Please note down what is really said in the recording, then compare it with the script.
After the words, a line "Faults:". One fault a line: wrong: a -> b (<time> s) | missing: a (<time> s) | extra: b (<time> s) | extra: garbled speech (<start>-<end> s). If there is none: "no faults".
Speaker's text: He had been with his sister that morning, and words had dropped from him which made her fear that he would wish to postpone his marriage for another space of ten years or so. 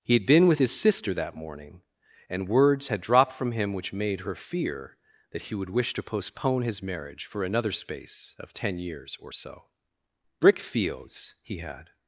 He had been with his sister that morning, and words had dropped from him which made her fear that he would wish to postpone his marriage for another space of ten years or so. "Brick fields!" he had
Faults:
extra: Brick fields he had (10.4 s)